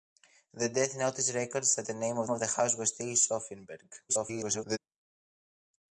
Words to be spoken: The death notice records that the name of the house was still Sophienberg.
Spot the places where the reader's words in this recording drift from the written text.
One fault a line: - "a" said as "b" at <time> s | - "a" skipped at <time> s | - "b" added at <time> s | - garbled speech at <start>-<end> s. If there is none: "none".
- "of" added at 2.3 s
- garbled speech at 4.1-4.8 s